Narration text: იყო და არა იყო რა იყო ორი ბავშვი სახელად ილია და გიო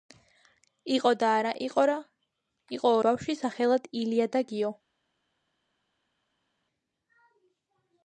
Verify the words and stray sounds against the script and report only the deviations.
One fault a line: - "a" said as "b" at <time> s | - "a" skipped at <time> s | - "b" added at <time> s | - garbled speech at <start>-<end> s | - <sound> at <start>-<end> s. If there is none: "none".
- "ორი" skipped at 3.0 s